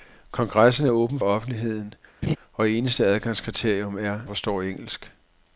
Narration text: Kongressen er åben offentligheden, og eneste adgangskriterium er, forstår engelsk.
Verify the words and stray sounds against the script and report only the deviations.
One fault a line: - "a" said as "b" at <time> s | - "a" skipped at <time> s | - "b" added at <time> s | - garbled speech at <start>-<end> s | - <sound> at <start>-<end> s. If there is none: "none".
- laugh at 2.2-2.4 s